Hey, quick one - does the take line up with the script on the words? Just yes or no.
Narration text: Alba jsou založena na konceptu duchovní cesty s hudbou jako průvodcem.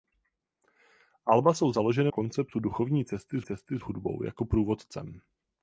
no